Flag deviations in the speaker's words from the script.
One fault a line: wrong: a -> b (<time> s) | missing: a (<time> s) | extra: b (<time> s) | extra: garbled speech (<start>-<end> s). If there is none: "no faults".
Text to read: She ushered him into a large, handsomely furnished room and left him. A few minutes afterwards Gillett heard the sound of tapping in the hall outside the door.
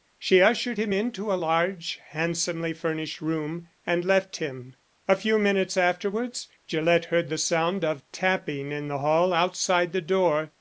no faults